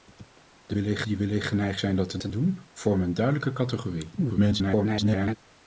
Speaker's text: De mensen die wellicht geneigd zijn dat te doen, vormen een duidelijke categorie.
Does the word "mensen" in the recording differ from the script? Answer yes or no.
yes